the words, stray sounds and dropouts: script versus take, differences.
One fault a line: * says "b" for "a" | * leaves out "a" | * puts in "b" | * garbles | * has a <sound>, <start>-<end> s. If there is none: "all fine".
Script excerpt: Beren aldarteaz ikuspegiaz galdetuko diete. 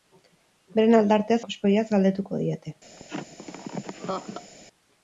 * has a laugh, 3.0-4.5 s